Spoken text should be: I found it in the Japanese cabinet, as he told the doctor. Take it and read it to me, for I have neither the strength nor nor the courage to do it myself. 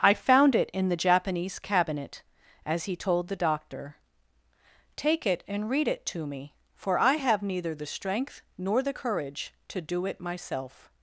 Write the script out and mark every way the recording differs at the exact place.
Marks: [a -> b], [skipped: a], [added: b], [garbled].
I found it in the Japanese cabinet, as he told the doctor. Take it and read it to me, for I have neither the strength nor [skipped: nor] the courage to do it myself.